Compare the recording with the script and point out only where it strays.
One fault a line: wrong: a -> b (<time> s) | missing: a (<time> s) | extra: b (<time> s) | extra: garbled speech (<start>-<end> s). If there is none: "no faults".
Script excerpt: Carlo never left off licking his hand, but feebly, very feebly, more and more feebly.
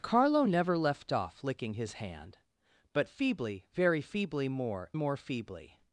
missing: and (4.9 s)